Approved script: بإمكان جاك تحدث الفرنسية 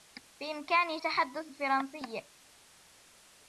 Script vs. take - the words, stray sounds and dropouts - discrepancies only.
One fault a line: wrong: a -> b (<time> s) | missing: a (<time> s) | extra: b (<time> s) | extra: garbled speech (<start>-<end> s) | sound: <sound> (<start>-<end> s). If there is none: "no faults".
missing: جاك (1.0 s)